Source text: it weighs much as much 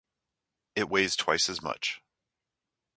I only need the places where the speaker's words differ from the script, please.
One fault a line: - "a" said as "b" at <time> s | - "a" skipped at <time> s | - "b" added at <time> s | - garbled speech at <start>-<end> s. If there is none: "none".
- "much" said as "twice" at 1.2 s